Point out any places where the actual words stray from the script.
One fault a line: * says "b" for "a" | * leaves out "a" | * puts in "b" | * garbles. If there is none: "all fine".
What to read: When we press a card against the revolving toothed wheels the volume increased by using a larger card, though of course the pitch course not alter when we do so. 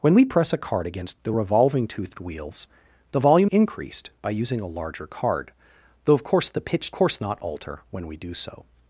all fine